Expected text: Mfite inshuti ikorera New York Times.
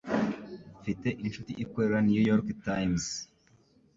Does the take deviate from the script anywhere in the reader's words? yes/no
no